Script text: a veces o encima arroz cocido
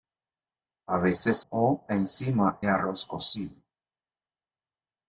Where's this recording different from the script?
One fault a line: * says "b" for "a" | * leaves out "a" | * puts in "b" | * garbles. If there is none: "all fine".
all fine